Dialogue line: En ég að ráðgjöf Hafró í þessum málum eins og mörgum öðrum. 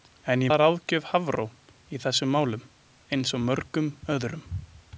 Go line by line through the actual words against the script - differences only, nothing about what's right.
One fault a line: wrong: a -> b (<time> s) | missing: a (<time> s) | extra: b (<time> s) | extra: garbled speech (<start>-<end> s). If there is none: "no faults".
no faults